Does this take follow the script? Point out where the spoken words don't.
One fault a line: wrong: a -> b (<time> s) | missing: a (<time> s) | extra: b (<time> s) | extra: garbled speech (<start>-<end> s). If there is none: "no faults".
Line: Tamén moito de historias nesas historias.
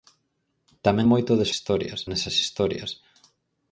no faults